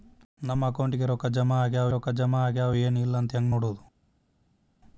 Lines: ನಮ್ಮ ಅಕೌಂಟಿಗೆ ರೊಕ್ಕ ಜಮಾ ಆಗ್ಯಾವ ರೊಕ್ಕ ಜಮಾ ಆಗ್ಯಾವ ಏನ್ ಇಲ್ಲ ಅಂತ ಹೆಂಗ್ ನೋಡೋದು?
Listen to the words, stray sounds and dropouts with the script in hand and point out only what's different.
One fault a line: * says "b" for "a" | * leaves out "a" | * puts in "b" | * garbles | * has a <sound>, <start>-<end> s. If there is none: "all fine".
all fine